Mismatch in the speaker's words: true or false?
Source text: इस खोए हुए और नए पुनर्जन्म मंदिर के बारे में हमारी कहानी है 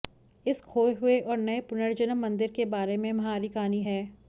false